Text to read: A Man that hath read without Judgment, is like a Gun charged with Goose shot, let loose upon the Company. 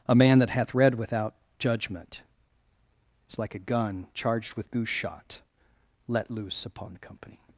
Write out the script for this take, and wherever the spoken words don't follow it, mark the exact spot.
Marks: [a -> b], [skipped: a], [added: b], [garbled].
A Man that hath read without Judgment, is like a Gun charged with Goose shot, let loose upon the Company.